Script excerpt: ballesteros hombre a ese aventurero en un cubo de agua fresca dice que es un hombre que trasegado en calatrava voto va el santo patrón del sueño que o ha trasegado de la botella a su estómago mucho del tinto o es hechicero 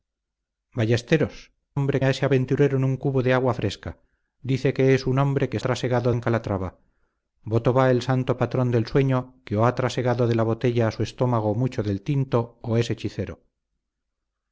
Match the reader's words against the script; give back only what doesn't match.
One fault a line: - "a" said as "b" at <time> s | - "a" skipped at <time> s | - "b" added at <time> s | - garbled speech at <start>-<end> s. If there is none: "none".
none